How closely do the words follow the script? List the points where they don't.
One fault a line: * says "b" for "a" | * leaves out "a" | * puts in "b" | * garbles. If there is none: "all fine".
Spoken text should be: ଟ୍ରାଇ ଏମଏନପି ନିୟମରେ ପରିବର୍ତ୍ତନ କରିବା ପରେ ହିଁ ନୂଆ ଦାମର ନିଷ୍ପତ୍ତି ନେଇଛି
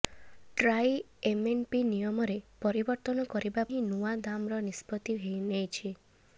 * leaves out "ପରେ"